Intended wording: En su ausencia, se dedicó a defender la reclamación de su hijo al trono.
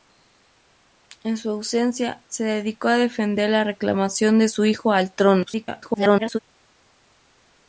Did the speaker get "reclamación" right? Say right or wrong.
right